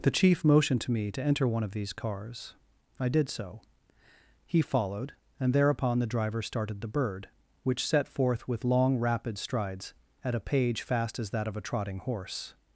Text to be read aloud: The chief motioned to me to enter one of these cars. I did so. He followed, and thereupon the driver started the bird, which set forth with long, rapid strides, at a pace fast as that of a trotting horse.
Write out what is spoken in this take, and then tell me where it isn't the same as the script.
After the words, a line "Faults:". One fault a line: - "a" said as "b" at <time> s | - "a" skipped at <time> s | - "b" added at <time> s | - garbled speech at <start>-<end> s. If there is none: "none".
The chief motioned to me to enter one of these cars. I did so. He followed, and thereupon the driver started the bird, which set forth with long, rapid strides, at a page fast as that of a trotting horse.
Faults:
- "pace" said as "page" at 10.4 s